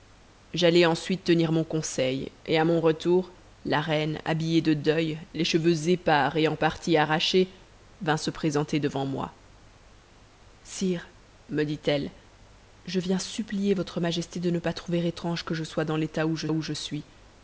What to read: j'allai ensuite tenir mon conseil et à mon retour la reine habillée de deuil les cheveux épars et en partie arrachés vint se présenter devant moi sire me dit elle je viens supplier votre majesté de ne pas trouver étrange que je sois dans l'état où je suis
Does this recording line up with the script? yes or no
no